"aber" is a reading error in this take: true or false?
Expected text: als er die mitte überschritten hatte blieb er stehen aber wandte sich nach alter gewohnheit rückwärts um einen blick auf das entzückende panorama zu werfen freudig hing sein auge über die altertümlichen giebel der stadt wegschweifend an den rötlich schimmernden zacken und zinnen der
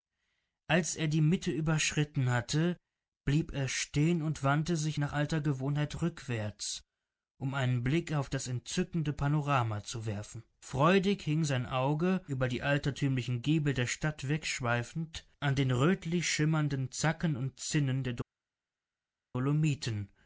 true